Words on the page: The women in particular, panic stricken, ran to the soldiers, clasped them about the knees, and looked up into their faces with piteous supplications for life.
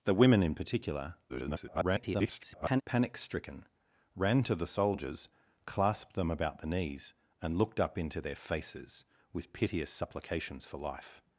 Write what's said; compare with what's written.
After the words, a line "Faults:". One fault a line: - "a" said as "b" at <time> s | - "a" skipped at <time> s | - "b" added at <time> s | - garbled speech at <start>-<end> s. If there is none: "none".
The women in particular, [garbled] panic stricken, ran to the soldiers, clasped them about the knees, and looked up into their faces with piteous supplications for life.
Faults:
- garbled speech at 1.3-2.8 s